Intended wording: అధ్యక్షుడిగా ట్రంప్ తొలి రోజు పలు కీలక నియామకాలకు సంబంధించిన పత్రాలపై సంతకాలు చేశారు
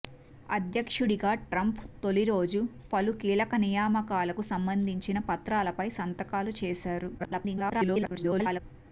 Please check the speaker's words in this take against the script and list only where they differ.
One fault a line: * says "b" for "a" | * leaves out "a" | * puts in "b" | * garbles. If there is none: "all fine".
* garbles